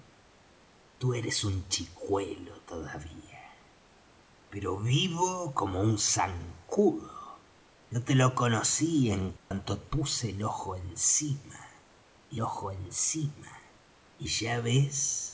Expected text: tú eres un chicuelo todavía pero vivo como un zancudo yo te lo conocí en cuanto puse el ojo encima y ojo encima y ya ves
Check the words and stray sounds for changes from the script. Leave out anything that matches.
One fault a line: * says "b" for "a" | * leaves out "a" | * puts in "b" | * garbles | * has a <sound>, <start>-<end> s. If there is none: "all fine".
* has a dropout, 9.4-9.5 s